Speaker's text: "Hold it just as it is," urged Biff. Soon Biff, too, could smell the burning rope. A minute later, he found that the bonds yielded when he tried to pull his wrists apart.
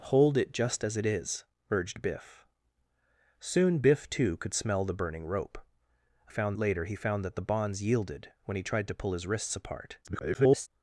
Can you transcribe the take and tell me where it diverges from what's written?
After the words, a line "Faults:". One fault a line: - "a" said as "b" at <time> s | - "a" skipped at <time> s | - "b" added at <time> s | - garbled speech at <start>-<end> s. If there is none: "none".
"Hold it just as it is," urged Biff. Soon Biff, too, could smell the burning rope. A found later, he found that the bonds yielded when he tried to pull his wrists apart. [garbled]
Faults:
- "minute" said as "found" at 6.3 s
- garbled speech at 10.0-10.7 s